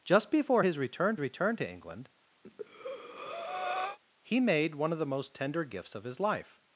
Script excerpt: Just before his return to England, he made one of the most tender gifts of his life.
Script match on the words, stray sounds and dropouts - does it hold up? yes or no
no